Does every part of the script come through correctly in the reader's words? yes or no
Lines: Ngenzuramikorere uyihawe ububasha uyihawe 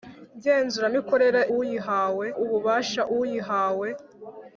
yes